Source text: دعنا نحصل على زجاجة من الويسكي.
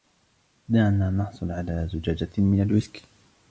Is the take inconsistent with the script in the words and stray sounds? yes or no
no